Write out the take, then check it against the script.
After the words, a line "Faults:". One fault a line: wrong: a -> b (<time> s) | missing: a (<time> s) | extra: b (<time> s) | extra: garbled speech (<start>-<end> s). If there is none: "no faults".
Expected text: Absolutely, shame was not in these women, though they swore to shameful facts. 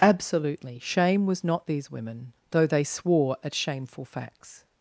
Absolutely, shame was not these women, though they swore at shameful facts.
Faults:
missing: in (1.7 s)
wrong: to -> at (3.4 s)